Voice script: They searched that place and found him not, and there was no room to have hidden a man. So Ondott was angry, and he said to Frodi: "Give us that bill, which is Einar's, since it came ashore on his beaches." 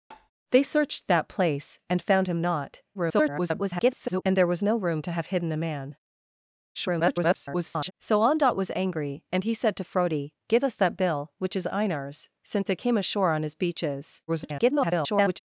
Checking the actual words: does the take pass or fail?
fail